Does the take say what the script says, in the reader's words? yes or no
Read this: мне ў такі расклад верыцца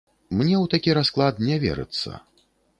no